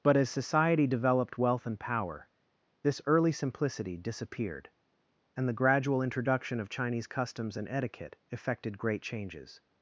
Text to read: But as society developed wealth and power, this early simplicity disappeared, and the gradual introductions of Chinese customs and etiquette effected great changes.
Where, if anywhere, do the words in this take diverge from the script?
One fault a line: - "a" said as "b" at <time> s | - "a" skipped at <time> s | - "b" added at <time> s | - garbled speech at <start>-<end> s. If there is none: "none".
- "introductions" said as "introduction" at 6.0 s